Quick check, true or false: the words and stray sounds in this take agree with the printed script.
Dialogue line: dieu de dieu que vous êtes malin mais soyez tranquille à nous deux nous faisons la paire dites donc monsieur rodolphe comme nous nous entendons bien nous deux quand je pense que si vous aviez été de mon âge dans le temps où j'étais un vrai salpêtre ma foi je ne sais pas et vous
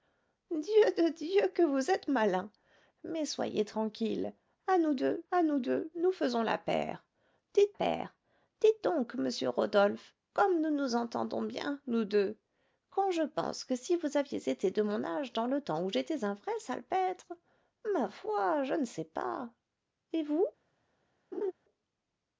false